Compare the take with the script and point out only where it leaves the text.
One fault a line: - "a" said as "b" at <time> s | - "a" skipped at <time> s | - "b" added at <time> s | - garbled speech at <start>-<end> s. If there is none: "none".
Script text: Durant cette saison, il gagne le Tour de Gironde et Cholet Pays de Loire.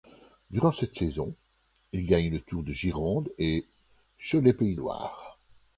- "de" skipped at 4.8 s